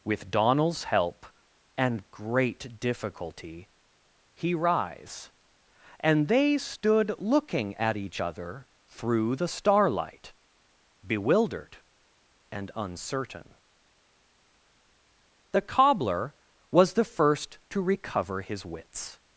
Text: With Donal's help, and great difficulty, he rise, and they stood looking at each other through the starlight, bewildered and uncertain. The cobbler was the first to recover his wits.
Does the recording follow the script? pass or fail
pass